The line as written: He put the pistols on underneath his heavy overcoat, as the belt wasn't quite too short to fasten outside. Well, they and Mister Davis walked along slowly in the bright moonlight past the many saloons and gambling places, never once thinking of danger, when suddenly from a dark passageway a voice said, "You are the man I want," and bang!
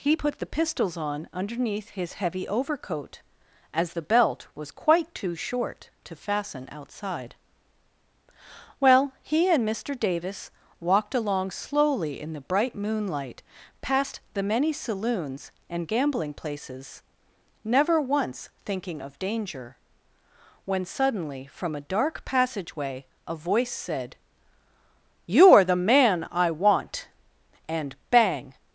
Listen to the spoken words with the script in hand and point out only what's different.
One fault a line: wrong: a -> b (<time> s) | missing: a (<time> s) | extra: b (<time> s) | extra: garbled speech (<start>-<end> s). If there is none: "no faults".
wrong: wasn't -> was (4.5 s)
wrong: they -> he (9.2 s)